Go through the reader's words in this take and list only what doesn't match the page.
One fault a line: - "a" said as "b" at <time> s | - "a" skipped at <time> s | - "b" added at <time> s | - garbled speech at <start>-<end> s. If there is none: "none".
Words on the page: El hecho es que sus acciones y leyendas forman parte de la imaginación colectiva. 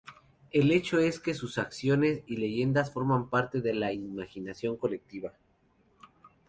none